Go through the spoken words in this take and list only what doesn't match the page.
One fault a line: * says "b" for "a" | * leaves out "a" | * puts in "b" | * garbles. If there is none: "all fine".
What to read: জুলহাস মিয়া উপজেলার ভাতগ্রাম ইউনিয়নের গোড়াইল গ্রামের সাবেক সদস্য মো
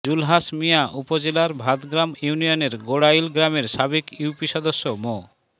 * puts in "ইউপি"